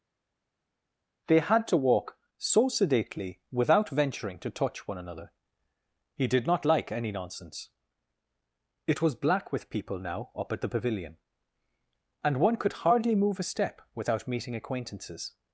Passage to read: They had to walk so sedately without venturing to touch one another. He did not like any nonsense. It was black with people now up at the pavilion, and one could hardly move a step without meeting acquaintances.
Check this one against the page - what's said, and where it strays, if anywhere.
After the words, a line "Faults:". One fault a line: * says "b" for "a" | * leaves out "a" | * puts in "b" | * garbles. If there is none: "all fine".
They had to walk so sedately without venturing to touch one another. He did not like any nonsense. It was black with people now up at the pavilion, and one could hardly move a step without meeting acquaintances.
Faults:
all fine